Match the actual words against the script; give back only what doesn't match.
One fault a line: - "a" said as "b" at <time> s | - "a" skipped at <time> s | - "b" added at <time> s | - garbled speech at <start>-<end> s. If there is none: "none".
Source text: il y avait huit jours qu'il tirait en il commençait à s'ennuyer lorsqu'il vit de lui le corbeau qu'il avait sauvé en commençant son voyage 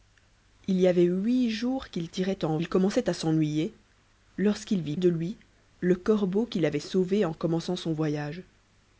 none